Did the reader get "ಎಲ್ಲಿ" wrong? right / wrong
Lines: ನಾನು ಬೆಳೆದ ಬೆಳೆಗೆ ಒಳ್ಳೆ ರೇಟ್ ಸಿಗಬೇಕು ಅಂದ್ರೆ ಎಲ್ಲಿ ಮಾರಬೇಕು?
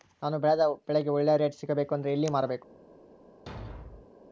right